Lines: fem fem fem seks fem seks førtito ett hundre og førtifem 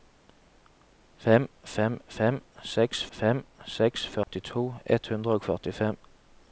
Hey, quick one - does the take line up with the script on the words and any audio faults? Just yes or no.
no